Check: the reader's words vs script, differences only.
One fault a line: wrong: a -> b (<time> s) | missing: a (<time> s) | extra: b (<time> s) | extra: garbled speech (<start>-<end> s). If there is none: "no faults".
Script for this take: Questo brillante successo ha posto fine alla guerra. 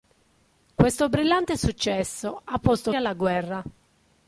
missing: fine (2.9 s)